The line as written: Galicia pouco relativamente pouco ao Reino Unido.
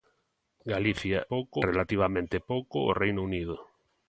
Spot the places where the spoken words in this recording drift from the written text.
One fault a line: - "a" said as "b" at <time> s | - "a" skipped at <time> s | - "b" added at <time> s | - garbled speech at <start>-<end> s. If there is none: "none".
none